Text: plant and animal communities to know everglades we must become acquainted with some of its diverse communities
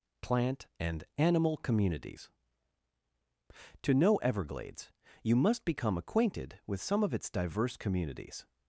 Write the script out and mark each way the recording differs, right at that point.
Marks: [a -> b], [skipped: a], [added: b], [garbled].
plant and animal communities to know everglades [we -> you] must become acquainted with some of its diverse communities